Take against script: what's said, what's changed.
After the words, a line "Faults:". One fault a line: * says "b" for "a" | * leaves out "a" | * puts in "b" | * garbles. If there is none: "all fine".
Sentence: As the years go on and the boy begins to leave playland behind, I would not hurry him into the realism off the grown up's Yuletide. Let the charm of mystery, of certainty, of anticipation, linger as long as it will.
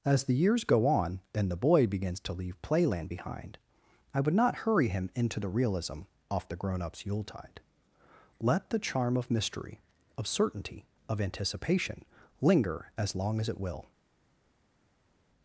As the years go on and the boy begins to leave playland behind, I would not hurry him into the realism off the grown up's Yuletide. Let the charm of mystery, of certainty, of anticipation, linger as long as it will.
Faults:
all fine